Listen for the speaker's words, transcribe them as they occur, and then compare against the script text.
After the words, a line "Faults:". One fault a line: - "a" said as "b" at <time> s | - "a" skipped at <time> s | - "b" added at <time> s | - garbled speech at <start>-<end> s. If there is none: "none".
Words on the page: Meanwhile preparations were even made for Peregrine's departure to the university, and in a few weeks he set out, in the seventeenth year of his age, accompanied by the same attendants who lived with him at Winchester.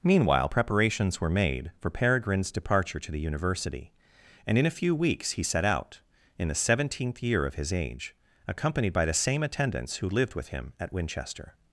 Meanwhile preparations were made for Peregrine's departure to the university, and in a few weeks he set out, in the seventeenth year of his age, accompanied by the same attendants who lived with him at Winchester.
Faults:
- "even" skipped at 1.3 s